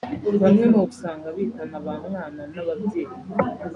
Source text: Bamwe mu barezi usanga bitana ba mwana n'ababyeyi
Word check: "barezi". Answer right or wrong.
wrong